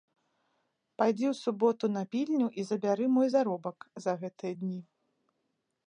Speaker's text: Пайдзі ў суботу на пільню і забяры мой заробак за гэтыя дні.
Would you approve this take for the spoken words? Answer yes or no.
yes